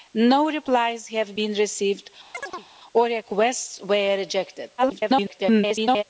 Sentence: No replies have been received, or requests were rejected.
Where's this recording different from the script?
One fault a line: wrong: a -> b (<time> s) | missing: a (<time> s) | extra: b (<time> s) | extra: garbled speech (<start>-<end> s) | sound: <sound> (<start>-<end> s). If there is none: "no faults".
sound: chirp (2.3-2.7 s)
extra: garbled speech (4.8-6.0 s)